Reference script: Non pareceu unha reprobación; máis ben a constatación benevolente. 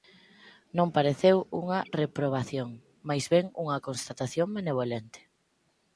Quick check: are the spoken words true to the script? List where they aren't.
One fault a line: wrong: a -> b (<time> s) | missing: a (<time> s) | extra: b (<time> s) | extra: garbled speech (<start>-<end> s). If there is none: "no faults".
wrong: a -> unha (3.6 s)